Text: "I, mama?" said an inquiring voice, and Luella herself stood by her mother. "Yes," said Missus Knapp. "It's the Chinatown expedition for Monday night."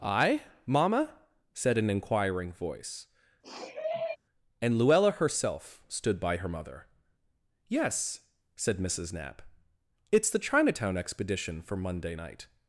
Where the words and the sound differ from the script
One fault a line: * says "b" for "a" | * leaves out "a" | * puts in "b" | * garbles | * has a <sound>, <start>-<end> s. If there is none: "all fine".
* has a sniff, 3.4-4.2 s